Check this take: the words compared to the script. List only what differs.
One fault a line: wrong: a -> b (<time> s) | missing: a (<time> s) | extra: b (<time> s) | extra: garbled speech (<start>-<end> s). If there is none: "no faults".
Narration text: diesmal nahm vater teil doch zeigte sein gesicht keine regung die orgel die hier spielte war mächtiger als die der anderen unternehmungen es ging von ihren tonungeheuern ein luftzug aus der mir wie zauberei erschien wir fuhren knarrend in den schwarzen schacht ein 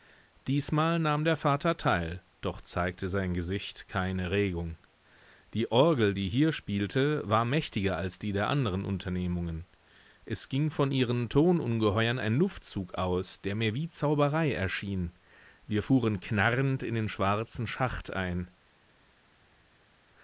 extra: der (1.2 s)